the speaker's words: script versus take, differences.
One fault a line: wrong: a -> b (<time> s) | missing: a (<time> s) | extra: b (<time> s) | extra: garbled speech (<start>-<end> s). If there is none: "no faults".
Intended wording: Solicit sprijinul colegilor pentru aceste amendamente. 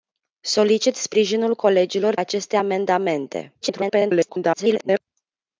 missing: pentru (2.1 s)
extra: garbled speech (3.6-5.0 s)